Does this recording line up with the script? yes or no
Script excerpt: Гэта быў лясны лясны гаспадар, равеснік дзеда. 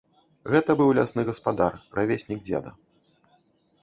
no